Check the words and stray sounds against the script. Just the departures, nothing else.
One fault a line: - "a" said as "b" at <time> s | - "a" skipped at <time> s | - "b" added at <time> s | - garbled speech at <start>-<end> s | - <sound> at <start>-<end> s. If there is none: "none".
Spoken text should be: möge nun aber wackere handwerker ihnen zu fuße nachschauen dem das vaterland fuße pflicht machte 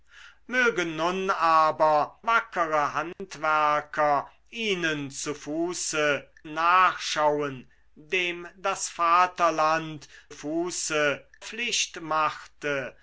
- dropout at 3.1-3.2 s